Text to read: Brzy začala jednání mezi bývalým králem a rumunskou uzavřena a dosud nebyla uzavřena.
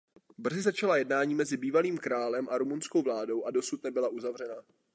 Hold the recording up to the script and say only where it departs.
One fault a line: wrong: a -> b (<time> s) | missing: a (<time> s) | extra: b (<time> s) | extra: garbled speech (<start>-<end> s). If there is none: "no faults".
wrong: uzavřena -> vládou (3.0 s)